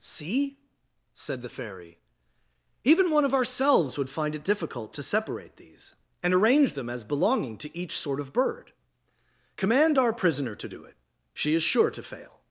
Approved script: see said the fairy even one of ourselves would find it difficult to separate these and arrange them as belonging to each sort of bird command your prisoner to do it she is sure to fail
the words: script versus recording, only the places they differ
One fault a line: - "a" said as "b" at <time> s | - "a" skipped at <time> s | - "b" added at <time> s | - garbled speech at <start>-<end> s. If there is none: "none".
- "your" said as "our" at 10.0 s